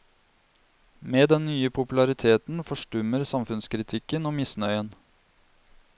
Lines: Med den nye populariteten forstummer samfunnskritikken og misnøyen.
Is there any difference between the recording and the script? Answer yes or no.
no